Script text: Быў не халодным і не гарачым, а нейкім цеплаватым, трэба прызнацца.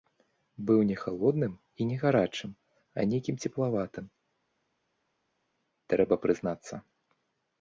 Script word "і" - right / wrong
right